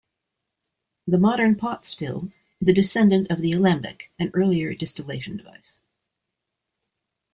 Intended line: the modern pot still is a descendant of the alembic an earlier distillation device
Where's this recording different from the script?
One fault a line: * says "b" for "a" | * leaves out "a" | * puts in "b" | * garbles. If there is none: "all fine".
all fine